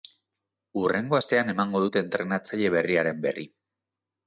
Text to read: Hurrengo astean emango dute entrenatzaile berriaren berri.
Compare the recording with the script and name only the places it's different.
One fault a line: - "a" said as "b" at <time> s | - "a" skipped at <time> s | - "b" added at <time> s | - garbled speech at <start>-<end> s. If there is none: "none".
none